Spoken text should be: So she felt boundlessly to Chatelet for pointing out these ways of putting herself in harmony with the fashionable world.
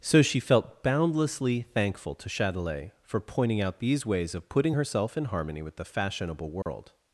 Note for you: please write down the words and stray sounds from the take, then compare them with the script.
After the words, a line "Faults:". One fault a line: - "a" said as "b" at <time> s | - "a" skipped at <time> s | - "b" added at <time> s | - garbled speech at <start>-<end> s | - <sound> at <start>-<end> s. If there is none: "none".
So she felt boundlessly thankful to Chatelet for pointing out these ways of putting herself in harmony with the fashionable world.
Faults:
- "thankful" added at 1.8 s
- dropout at 6.6-6.7 s